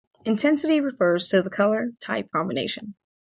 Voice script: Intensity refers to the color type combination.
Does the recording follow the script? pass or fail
pass